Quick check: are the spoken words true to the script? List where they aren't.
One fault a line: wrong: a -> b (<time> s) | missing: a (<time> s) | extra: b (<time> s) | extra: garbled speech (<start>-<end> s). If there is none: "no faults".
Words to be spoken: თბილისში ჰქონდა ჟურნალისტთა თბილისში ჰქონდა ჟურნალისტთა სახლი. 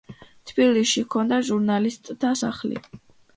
missing: თბილისში ჰქონდა ჟურნალისტთა (2.3 s)